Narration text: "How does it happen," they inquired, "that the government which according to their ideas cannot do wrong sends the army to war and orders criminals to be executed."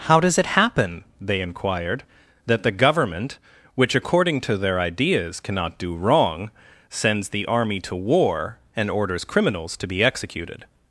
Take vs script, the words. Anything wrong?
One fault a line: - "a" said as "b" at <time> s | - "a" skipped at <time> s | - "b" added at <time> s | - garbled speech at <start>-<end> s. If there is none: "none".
none